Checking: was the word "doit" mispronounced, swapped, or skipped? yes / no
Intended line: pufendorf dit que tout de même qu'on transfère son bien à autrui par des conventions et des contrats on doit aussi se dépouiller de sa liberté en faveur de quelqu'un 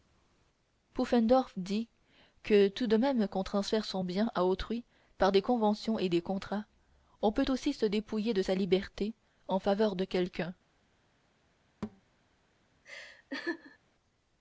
yes